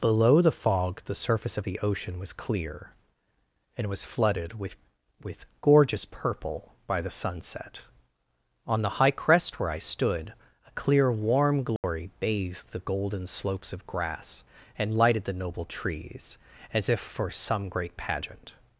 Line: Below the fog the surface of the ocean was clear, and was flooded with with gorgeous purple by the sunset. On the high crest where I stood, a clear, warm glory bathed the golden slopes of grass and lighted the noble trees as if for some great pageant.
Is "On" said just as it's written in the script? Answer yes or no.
yes